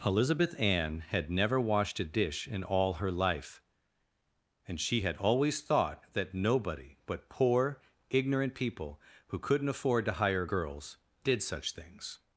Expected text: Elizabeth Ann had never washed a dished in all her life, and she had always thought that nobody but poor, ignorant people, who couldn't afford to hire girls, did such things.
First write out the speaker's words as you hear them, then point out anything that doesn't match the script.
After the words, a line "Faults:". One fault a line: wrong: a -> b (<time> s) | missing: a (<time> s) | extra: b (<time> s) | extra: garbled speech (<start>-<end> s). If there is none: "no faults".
Elizabeth Ann had never washed a dish in all her life, and she had always thought that nobody but poor, ignorant people, who couldn't afford to hire girls, did such things.
Faults:
wrong: dished -> dish (2.0 s)